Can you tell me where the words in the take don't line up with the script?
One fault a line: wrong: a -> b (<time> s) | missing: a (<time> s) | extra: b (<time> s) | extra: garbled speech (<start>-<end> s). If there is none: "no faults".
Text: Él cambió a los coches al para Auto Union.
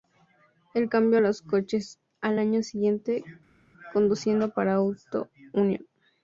extra: año siguiente conduciendo (2.4 s)